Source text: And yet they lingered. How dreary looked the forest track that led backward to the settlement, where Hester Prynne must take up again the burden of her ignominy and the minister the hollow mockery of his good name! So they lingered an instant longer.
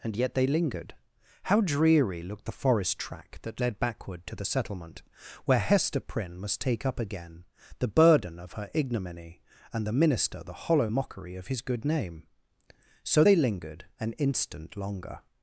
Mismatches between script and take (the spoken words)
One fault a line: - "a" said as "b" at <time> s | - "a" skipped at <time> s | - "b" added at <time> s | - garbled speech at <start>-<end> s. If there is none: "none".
none